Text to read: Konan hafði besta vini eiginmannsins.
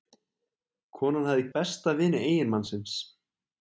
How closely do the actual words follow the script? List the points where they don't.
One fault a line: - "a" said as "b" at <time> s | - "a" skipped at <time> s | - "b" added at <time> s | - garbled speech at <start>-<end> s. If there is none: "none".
none